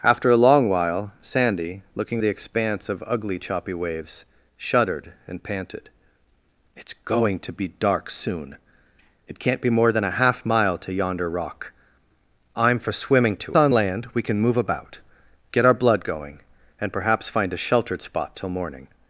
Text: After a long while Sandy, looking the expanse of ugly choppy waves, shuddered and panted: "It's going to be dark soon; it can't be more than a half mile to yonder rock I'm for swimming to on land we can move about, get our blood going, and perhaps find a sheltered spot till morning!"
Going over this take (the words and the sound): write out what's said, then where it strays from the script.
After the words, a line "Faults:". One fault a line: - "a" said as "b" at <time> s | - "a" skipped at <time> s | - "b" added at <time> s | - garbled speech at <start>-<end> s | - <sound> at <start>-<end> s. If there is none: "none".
After a long while Sandy, looking the expanse of ugly choppy waves, shuddered and panted: "It's going to be dark soon; it can't be more than a half mile to yonder rock I'm for swimming to on land we can move about, get our blood going, and perhaps find a sheltered spot till morning!"
Faults:
none